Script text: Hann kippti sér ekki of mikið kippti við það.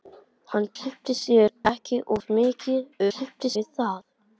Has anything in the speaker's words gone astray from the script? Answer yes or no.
no